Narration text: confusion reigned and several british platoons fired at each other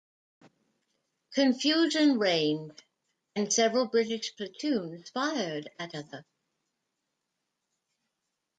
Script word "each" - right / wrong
wrong